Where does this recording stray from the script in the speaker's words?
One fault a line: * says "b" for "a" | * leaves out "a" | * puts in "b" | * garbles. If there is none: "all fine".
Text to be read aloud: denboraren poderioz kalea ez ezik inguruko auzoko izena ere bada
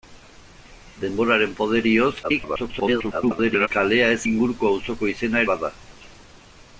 * garbles
* leaves out "ezik"
* leaves out "ere"